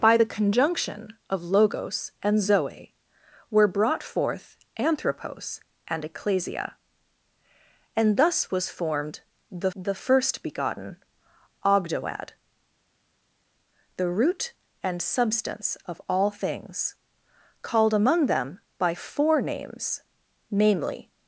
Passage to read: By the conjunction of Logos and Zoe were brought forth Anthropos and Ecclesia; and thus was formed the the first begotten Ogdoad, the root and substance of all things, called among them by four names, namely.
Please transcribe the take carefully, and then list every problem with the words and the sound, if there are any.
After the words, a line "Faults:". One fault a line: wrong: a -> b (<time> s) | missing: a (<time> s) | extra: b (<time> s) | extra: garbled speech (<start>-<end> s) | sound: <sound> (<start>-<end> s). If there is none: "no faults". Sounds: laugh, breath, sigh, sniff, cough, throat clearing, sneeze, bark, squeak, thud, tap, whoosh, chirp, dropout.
By the conjunction of Logos and Zoe were brought forth Anthropos and Ecclesia; and thus was formed the the first begotten Ogdoad, the root and substance of all things, called among them by four names, namely.
Faults:
no faults